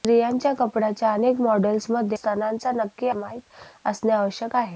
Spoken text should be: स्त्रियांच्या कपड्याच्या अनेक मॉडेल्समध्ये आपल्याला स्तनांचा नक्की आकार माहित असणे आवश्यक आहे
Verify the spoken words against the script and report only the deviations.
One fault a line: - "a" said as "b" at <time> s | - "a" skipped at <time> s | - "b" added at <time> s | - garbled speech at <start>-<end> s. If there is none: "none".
- "आपल्याला" skipped at 2.2 s
- "आकार" skipped at 3.1 s